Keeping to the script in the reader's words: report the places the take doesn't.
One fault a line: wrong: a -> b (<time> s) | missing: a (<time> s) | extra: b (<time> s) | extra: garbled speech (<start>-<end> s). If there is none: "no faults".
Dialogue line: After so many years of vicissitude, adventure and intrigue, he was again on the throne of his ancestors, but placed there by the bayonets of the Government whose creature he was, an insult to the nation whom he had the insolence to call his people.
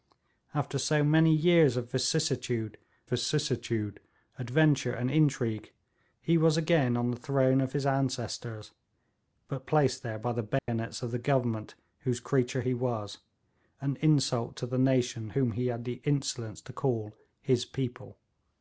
extra: vicissitude (3.1 s)